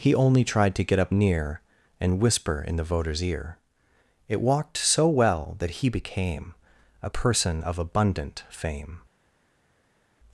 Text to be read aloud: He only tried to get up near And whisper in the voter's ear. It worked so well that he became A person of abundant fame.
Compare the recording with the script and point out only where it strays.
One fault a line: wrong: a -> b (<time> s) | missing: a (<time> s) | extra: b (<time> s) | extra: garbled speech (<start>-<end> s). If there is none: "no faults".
wrong: worked -> walked (4.4 s)